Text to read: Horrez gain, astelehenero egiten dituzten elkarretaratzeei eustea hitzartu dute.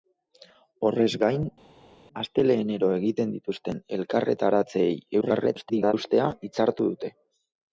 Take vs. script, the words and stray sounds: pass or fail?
fail